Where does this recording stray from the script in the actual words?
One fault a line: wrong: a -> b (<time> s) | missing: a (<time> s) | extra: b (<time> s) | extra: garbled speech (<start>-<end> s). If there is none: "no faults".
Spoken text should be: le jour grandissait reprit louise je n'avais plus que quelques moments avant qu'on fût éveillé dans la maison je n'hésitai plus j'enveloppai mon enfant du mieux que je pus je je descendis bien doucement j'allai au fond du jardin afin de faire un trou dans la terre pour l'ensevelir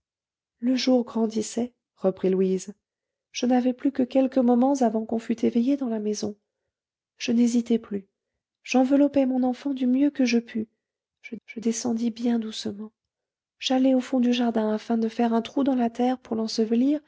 no faults